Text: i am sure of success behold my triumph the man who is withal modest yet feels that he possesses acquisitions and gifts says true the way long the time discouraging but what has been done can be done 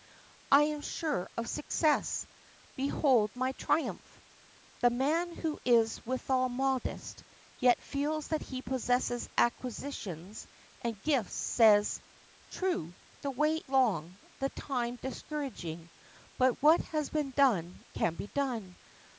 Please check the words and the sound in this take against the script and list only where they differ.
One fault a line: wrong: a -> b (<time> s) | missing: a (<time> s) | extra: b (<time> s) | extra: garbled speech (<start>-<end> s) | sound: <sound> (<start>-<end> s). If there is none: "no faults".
no faults